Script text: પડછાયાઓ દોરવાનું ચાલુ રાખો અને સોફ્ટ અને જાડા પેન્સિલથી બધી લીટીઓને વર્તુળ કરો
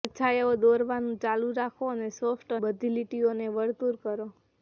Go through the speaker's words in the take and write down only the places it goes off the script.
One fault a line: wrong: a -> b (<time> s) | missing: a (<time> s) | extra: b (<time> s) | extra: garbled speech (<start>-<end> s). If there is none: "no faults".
missing: અને જાડા પેન્સિલથી (2.6 s)